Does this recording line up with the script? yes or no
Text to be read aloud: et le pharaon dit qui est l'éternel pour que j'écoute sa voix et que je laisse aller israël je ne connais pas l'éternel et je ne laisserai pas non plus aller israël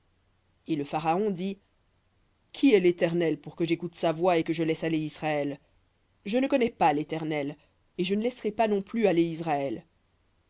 yes